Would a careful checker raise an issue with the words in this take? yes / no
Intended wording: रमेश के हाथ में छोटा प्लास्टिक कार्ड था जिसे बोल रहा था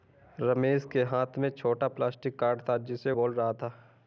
no